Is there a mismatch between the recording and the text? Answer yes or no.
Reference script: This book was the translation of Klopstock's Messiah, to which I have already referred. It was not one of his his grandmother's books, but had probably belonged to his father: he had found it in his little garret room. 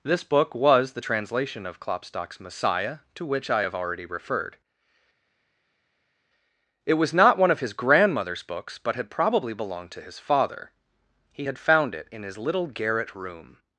yes